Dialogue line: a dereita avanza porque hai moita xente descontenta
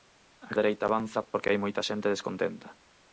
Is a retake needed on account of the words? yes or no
no